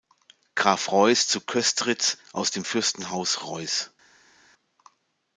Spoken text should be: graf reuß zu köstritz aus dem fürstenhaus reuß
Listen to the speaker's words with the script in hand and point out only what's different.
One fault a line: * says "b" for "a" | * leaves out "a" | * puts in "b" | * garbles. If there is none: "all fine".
all fine